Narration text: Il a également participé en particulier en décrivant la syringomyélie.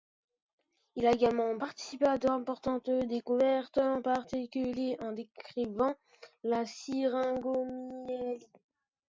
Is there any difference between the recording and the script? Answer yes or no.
yes